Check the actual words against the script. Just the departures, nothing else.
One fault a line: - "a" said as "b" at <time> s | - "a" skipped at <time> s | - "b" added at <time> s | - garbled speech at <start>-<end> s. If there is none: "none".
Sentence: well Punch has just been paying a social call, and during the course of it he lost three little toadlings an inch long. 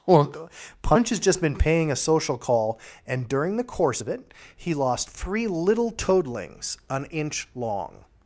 none